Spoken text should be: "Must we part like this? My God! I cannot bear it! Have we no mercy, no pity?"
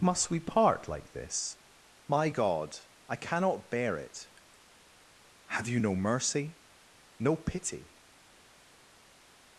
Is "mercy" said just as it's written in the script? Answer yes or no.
yes